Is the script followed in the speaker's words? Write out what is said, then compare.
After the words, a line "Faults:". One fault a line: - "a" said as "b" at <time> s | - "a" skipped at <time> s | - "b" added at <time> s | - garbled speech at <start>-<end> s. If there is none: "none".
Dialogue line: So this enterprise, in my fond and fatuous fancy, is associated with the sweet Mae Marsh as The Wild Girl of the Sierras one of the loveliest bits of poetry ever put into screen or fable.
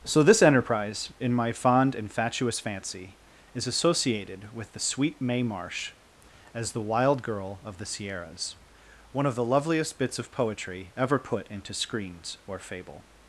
So this enterprise, in my fond and fatuous fancy, is associated with the sweet Mae Marsh as The Wild Girl of the Sierras one of the loveliest bits of poetry ever put into screens or fable.
Faults:
- "screen" said as "screens" at 11.7 s